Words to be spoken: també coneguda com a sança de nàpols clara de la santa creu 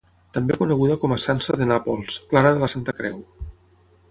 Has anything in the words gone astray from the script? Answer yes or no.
no